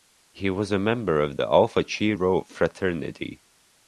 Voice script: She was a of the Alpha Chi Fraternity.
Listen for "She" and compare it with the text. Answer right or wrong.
wrong